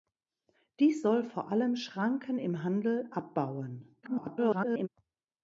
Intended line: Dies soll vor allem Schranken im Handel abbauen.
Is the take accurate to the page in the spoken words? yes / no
no